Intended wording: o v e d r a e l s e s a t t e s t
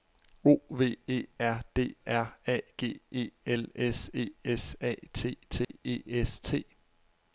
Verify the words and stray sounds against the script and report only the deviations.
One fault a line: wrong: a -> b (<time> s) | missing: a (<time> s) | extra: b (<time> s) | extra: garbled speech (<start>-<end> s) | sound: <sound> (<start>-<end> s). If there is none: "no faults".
extra: r (1.4 s)
extra: g (2.8 s)
sound: dropout (5.6-5.7 s)